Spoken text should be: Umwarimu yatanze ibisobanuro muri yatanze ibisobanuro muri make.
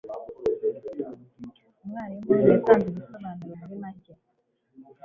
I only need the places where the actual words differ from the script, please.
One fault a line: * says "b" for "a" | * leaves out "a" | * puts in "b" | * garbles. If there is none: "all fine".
* leaves out "yatanze ibisobanuro muri"